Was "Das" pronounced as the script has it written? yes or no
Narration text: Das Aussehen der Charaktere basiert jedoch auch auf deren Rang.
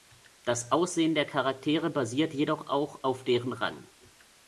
yes